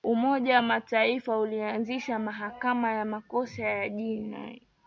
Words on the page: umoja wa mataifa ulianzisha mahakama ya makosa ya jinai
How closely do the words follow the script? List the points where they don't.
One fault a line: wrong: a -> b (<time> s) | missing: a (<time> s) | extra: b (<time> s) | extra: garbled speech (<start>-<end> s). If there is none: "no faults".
no faults